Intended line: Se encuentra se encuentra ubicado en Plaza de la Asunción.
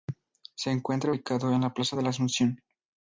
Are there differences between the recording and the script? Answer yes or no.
yes